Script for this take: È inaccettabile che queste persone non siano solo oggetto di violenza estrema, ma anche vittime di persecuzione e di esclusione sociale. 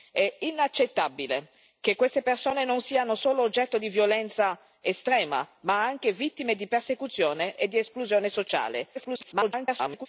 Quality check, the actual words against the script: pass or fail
fail